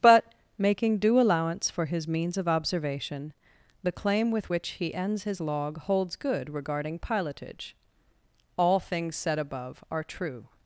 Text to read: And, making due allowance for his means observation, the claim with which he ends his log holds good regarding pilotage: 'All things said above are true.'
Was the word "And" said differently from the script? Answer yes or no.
yes